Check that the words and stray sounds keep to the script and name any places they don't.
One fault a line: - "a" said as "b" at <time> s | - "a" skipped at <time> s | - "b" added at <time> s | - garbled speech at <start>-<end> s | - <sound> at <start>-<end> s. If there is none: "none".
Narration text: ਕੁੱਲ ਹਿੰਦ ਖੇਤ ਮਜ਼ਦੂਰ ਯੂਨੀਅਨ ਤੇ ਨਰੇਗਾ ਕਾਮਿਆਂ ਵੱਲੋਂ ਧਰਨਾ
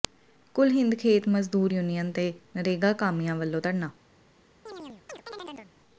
- chirp at 4.7-5.7 s